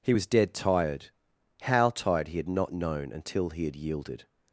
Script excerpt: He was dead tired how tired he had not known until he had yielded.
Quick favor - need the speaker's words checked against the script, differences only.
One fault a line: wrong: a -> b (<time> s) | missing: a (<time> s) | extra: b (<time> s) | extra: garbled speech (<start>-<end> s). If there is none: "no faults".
no faults